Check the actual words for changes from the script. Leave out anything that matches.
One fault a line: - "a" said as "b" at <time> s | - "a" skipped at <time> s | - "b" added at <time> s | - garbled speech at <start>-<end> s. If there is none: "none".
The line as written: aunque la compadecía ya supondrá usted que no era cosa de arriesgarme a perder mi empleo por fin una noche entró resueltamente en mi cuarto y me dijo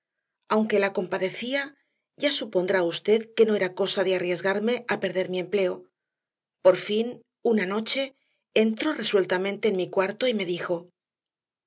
none